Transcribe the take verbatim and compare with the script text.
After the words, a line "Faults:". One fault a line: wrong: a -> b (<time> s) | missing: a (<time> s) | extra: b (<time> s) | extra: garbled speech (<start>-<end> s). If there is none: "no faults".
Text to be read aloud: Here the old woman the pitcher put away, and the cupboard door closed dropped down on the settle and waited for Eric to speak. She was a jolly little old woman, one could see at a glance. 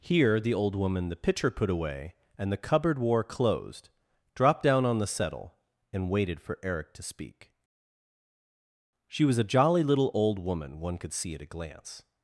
Here the old woman the pitcher put away, and the cupboard war closed dropped down on the settle and waited for Eric to speak. She was a jolly little old woman, one could see at a glance.
Faults:
wrong: door -> war (3.0 s)